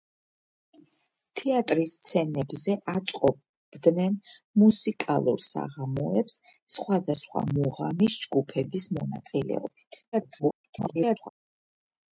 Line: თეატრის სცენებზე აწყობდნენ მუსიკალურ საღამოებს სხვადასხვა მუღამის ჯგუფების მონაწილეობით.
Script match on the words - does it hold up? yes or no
no